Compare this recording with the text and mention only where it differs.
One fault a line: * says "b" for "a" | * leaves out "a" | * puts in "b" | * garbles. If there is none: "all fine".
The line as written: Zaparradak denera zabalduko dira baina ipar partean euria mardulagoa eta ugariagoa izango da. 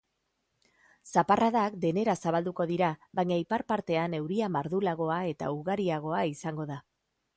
all fine